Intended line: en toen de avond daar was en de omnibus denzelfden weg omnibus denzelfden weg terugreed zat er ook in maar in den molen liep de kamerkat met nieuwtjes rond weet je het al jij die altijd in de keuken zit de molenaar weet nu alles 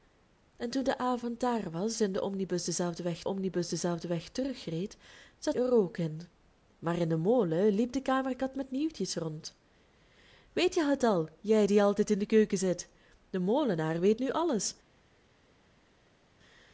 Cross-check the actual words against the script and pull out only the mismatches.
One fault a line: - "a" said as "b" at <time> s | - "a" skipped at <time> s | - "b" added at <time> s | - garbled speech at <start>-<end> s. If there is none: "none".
none